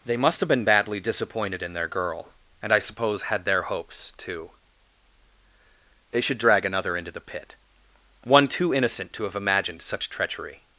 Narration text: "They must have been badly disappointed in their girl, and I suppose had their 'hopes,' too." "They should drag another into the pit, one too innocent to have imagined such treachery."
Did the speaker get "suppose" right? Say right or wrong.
right